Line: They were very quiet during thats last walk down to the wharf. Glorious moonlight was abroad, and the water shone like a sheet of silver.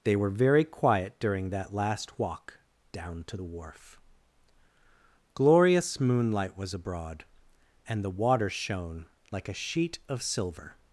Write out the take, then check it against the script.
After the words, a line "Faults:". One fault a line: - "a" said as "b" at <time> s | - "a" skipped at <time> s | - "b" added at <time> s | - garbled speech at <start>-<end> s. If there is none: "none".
They were very quiet during that last walk down to the wharf. Glorious moonlight was abroad, and the water shone like a sheet of silver.
Faults:
- "thats" said as "that" at 1.5 s